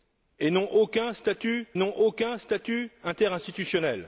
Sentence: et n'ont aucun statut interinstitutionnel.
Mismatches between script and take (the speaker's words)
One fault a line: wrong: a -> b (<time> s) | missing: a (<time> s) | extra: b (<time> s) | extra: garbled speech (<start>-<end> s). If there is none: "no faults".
extra: n'ont aucun statut (1.8 s)